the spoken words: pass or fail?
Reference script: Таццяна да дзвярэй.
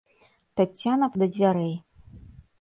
pass